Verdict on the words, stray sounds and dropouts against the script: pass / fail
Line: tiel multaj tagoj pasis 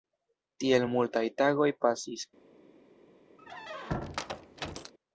fail